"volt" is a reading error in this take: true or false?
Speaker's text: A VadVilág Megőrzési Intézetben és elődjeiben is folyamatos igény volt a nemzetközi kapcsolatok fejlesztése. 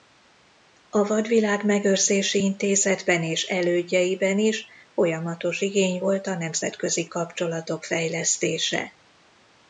false